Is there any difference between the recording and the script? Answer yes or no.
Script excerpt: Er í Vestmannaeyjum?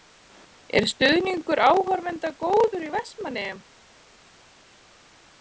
yes